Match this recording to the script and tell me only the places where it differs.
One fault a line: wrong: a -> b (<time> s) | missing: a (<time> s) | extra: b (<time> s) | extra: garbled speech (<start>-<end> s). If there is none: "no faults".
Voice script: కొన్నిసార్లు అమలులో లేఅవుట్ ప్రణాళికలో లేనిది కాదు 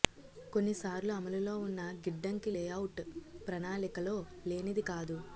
extra: ఉన్న గిడ్డంగి (1.6 s)